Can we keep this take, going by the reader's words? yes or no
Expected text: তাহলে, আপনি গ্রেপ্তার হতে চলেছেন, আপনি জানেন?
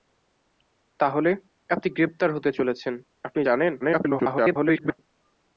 no